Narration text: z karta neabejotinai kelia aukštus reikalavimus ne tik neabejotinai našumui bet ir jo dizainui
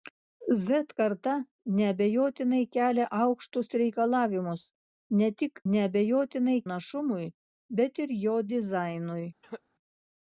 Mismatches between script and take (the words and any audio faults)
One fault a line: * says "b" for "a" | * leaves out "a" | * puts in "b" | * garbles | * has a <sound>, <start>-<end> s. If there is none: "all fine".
* has a cough, 9.4-9.6 s